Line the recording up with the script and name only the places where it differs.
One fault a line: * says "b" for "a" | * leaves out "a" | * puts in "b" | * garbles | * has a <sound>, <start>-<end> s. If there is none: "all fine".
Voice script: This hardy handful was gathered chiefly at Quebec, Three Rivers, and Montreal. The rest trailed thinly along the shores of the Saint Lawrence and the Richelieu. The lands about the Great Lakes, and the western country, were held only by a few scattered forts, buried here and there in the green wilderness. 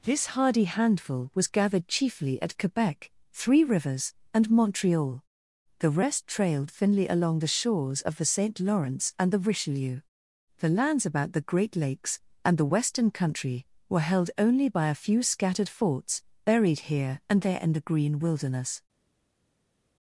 all fine